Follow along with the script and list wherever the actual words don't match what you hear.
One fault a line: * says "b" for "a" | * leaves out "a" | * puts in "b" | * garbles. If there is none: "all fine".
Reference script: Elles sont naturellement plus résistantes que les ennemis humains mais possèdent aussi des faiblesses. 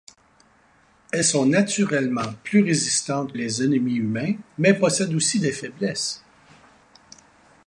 * leaves out "que"